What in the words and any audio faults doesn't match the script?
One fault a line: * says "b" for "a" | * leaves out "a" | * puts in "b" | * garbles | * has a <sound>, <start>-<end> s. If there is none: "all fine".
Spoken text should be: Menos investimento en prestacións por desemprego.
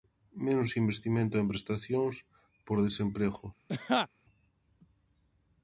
* has a laugh, 3.7-4.1 s